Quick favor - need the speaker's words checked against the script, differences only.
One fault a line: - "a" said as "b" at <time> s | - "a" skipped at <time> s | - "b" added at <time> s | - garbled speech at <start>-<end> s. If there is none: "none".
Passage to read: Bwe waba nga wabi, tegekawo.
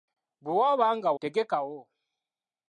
- "wabi" skipped at 1.1 s